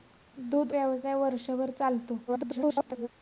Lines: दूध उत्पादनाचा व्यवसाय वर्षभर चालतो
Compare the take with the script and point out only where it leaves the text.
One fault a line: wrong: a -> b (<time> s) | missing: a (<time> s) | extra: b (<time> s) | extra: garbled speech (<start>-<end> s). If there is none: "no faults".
missing: उत्पादनाचा (0.7 s)
extra: garbled speech (2.3-3.1 s)